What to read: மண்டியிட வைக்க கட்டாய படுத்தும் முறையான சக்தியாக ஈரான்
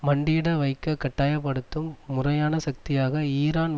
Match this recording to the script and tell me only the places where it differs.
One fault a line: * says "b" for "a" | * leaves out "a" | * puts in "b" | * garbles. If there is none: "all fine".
all fine